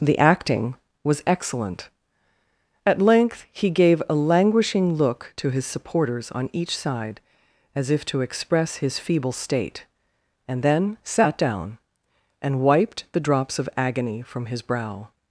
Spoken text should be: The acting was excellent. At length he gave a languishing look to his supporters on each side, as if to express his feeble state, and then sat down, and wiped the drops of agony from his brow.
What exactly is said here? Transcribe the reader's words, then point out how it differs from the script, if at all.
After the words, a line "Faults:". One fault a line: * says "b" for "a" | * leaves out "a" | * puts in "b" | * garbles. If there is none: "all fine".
The acting was excellent. At length he gave a languishing look to his supporters on each side, as if to express his feeble state, and then sat down, and wiped the drops of agony from his brow.
Faults:
all fine